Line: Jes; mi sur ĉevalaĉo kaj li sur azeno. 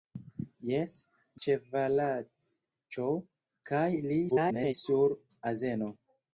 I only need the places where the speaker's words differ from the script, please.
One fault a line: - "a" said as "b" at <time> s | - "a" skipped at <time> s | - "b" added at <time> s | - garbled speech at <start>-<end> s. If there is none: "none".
- "mi sur" skipped at 0.9 s
- garbled speech at 4.3-4.7 s